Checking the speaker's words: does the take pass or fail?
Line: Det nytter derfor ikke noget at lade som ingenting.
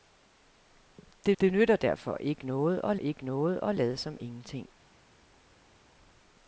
fail